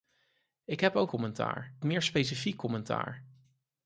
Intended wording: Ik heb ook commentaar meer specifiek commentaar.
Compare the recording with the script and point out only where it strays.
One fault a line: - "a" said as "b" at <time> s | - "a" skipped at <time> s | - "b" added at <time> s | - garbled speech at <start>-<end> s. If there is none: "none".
none